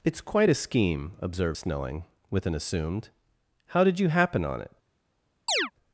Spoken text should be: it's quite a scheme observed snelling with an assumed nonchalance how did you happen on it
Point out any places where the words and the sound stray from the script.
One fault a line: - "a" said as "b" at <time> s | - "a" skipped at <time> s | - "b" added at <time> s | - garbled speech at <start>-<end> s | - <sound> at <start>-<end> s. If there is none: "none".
- "nonchalance" skipped at 3.1 s
- chirp at 5.5-5.7 s